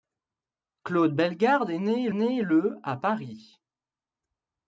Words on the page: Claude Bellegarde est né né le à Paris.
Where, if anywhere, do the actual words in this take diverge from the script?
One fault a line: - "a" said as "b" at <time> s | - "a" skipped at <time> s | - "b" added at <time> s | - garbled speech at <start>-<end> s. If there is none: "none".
none